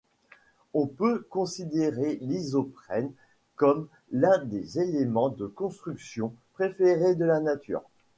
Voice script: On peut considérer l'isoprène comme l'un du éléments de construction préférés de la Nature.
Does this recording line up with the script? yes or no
no